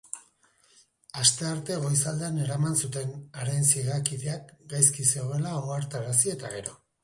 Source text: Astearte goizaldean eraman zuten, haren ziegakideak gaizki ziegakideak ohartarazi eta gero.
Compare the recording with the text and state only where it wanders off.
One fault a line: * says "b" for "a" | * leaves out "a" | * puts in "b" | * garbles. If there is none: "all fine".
* says "zegoela" for "ziegakideak"